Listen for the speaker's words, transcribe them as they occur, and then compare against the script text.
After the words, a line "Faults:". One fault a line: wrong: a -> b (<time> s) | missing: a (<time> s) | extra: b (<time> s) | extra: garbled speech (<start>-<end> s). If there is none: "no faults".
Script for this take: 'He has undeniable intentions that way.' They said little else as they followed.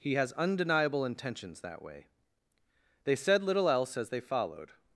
'He has undeniable intentions that way.' They said little else as they followed.
Faults:
no faults